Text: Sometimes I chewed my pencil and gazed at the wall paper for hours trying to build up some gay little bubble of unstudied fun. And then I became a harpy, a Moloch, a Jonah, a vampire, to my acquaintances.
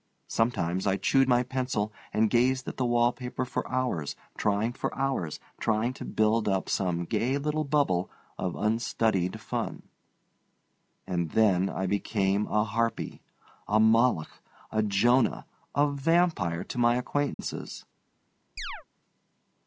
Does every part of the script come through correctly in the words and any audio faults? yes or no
no